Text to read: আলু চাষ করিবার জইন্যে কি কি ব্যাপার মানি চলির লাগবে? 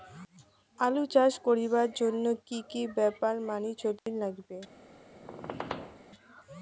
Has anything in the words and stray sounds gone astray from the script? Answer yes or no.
yes